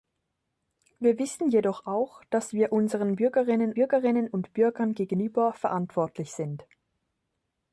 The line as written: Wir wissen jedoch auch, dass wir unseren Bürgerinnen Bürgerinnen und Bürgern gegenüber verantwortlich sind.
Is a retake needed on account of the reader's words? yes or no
no